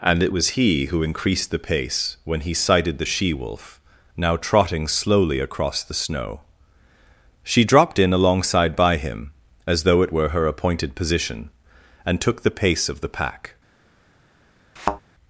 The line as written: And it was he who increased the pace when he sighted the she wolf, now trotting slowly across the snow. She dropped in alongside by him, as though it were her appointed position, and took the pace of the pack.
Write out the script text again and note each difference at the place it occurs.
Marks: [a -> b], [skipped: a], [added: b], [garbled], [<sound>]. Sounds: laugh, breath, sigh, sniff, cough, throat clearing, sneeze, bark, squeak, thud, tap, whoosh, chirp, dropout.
And it was he who increased the pace when he sighted the she wolf, now trotting slowly across the snow. She dropped in alongside by him, as though it were her appointed position, and took the pace of the pack. [thud]